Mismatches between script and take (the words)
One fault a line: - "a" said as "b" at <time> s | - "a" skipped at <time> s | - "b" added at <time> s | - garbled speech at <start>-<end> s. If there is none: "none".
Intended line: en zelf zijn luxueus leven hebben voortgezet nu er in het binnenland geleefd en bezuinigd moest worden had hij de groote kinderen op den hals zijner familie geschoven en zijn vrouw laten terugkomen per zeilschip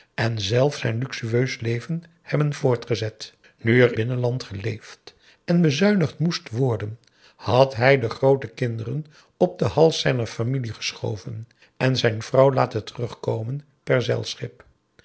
- "in het" skipped at 4.0 s